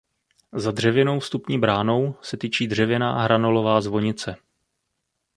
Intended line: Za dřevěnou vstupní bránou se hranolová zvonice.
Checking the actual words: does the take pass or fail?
fail